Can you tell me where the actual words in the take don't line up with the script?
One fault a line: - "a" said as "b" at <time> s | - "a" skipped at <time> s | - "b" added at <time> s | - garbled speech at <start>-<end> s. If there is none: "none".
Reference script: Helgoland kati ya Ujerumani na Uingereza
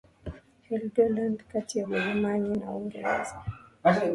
none